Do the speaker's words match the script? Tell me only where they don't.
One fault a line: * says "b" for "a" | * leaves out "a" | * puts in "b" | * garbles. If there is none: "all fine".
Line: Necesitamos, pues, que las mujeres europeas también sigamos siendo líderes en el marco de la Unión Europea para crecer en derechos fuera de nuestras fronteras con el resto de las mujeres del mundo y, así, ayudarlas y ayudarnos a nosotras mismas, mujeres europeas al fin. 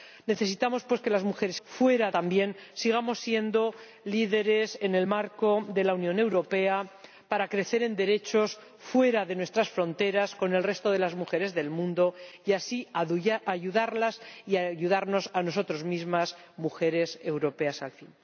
* says "fuera" for "europeas"